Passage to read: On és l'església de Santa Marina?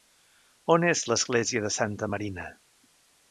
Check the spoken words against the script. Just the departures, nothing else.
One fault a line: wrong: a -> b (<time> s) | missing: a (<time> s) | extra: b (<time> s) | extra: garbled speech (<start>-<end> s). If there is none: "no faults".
no faults